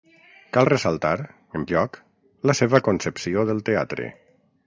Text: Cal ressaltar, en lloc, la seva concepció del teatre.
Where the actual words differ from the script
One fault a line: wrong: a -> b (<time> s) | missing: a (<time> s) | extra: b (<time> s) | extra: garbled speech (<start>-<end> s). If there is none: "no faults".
no faults